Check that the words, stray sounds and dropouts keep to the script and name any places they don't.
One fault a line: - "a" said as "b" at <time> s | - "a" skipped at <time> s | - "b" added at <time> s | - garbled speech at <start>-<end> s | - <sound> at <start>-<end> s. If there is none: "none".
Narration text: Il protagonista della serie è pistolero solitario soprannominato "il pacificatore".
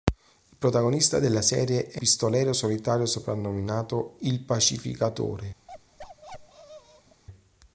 - bark at 5.7-7.2 s